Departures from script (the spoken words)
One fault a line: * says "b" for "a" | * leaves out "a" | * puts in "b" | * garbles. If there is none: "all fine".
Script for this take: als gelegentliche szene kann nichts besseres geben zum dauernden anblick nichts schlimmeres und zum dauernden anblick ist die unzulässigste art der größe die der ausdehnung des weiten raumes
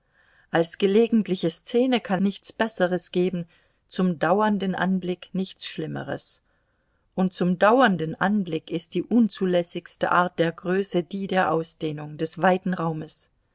all fine